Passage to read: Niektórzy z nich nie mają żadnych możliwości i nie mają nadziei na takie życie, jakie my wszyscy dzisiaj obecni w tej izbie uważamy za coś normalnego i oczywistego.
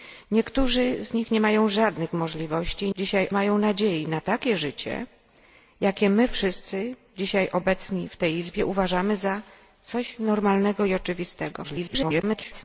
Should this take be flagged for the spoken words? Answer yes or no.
yes